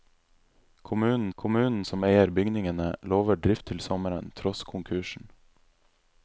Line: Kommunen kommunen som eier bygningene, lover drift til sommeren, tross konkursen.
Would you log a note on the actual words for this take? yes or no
no